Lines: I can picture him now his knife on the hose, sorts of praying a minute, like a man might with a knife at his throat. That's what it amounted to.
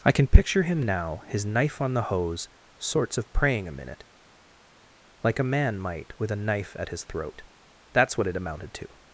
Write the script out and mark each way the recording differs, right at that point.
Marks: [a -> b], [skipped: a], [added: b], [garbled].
I can picture him now his knife on the hose, sorts of praying a minute, like a man might with a knife at his throat. That's what it amounted to.